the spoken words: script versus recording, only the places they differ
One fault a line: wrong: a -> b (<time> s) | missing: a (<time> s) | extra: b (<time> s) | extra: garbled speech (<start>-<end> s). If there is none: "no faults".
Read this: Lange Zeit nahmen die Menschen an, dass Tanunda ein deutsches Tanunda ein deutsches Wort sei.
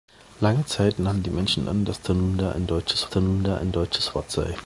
no faults